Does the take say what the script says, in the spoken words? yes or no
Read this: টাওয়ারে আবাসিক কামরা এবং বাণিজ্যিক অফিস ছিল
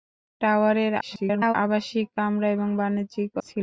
no